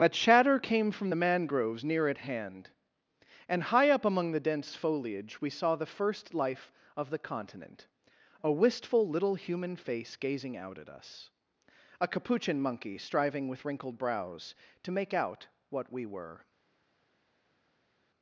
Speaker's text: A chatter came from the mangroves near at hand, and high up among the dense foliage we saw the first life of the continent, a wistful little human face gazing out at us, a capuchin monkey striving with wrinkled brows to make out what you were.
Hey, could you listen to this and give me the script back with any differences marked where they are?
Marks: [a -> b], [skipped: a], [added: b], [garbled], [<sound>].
A chatter came from the mangroves near at hand, and high up among the dense foliage we saw the first life of the continent, a wistful little human face gazing out at us, a capuchin monkey striving with wrinkled brows to make out what [you -> we] were.